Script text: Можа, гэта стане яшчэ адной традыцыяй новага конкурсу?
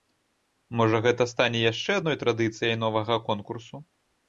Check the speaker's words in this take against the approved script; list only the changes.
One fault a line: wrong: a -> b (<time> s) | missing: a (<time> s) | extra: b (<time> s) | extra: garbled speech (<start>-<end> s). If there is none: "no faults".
no faults